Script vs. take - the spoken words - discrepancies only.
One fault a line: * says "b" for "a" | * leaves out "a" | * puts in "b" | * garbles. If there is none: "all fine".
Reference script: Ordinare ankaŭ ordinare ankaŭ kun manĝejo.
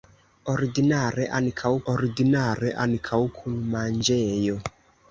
all fine